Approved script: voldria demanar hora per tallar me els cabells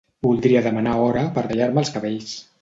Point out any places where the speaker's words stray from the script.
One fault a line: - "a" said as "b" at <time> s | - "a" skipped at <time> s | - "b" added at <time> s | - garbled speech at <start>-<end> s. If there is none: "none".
none